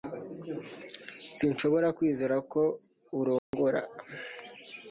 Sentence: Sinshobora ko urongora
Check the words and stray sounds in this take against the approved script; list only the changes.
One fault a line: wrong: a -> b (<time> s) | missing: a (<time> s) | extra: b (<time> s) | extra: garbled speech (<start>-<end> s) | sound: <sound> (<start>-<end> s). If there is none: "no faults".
extra: kwizera (2.0 s)
sound: dropout (3.4-3.5 s)